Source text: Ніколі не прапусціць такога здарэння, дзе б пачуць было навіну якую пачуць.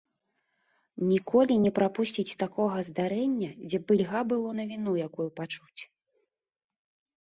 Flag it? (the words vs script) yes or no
yes